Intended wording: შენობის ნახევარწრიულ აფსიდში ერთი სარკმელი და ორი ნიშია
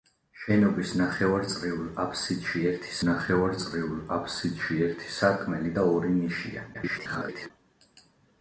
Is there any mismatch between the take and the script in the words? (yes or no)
yes